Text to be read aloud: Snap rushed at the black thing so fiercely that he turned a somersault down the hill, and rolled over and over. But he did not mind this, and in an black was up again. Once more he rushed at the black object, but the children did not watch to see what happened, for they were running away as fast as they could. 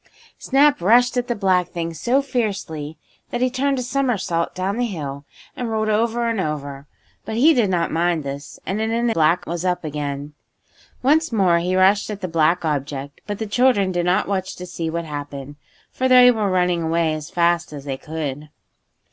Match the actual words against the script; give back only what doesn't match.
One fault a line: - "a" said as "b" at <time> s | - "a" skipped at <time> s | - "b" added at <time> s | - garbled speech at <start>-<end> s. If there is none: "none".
none